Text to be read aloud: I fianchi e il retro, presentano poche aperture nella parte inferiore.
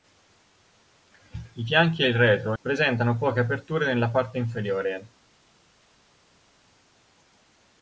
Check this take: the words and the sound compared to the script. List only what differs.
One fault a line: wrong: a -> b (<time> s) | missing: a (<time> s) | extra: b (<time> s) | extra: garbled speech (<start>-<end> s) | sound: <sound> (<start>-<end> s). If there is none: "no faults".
no faults